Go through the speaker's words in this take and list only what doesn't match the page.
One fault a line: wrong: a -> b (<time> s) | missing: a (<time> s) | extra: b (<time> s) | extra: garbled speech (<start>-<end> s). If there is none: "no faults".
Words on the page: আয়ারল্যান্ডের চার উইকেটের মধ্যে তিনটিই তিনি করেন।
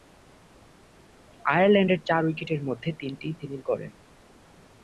no faults